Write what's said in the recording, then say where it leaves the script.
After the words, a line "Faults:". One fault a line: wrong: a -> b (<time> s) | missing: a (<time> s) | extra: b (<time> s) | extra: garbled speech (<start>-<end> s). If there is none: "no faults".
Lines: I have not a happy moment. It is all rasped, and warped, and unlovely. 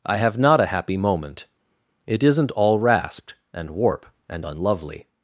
I have not a happy moment. It isn't all rasped, and warp, and unlovely.
Faults:
wrong: is -> isn't (2.2 s)
wrong: warped -> warp (3.7 s)